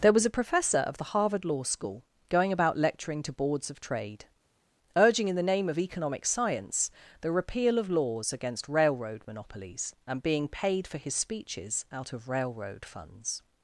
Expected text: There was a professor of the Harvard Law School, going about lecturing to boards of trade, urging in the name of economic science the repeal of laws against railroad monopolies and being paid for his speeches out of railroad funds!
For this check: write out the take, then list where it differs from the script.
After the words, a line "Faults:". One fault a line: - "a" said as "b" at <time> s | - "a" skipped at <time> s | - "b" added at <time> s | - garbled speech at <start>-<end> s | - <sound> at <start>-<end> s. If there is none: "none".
There was a professor of the Harvard Law School, going about lecturing to boards of trade, urging in the name of economic science the repeal of laws against railroad monopolies and being paid for his speeches out of railroad funds!
Faults:
none